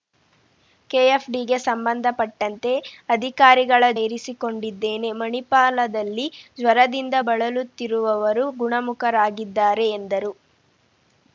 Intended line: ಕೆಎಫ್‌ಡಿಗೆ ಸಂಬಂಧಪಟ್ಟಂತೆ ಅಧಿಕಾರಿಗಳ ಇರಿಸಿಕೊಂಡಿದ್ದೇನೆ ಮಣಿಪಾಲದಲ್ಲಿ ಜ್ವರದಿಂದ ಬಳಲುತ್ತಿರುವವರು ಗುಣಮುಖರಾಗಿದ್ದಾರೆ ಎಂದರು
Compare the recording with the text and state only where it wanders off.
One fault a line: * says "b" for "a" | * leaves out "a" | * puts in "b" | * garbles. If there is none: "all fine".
all fine